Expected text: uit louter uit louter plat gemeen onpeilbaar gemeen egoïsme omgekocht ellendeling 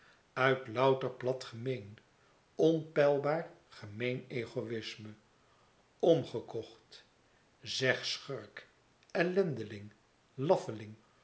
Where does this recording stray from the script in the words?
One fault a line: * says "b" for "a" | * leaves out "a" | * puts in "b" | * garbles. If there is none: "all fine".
* leaves out "uit louter"
* puts in "zeg schurk"